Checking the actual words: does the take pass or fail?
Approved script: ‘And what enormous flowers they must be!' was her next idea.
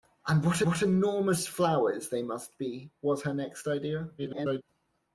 fail